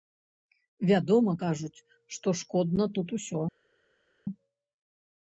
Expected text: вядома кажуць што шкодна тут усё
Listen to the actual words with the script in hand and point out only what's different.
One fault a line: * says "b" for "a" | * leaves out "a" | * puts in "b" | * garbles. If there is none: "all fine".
all fine